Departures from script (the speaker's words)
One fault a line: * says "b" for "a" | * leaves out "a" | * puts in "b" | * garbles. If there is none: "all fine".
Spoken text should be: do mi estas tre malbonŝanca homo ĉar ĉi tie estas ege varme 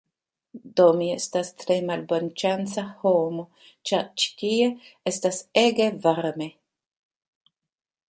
all fine